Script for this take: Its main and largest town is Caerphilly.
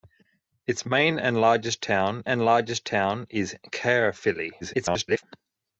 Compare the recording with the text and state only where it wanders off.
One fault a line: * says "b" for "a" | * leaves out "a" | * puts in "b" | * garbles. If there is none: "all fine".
* puts in "and largest town"
* garbles